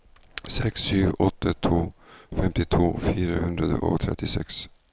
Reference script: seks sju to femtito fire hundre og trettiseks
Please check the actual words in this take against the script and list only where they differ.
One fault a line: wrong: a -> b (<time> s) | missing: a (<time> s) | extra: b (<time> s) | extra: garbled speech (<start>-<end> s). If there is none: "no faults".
extra: åtte (1.2 s)